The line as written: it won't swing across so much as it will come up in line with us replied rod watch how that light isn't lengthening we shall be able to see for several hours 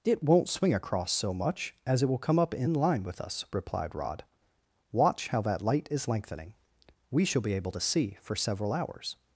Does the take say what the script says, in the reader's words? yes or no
no